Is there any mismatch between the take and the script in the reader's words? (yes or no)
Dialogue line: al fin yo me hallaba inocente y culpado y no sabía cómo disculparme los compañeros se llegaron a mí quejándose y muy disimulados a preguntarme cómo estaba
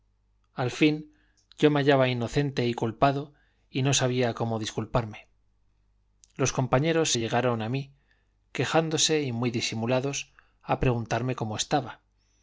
no